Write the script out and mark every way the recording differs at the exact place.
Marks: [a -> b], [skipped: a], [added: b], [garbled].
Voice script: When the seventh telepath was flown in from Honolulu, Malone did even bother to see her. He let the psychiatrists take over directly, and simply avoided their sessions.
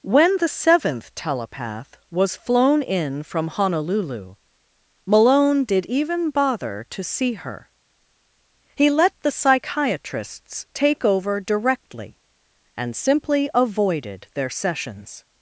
When the seventh telepath was flown in from Honolulu, Malone did even bother to see her. He let the psychiatrists take over directly, and simply avoided their sessions.